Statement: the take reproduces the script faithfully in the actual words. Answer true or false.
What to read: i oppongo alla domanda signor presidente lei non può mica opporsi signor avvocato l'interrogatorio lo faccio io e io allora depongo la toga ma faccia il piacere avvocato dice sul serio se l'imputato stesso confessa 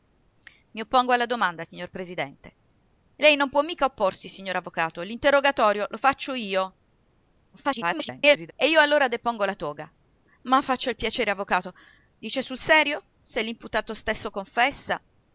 false